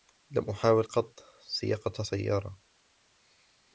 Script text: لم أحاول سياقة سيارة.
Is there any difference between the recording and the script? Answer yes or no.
yes